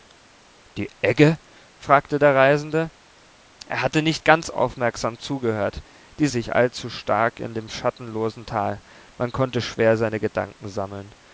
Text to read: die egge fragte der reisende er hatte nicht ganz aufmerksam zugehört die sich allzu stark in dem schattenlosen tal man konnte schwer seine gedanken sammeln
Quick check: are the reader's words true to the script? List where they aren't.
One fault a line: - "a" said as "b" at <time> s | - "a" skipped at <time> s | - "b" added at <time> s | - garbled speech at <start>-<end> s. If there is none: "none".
none